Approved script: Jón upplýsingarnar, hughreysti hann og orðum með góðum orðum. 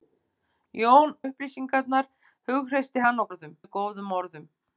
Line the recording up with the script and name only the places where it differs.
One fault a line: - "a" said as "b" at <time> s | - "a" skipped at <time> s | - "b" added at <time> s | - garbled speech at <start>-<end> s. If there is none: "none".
none